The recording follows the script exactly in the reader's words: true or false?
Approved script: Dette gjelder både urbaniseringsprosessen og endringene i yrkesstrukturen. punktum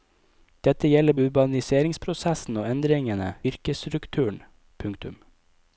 false